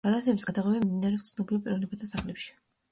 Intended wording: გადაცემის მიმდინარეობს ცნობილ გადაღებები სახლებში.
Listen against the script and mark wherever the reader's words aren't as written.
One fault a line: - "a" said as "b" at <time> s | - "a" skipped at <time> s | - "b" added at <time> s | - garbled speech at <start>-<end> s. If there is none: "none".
- "გადაღებები" added at 0.5 s
- "გადაღებები" said as "პიროვნებათა" at 1.7 s